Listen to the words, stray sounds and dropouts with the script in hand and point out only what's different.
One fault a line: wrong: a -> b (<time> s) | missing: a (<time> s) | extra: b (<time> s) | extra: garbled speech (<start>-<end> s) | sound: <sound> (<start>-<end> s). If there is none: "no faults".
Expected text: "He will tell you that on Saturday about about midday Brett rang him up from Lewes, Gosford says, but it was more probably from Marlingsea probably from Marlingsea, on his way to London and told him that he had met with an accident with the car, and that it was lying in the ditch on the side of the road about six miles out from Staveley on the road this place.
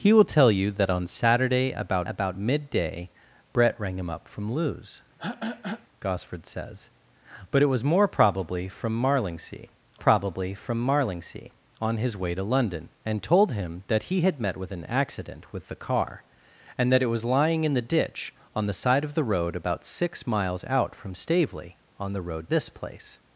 sound: throat clearing (5.2-5.9 s)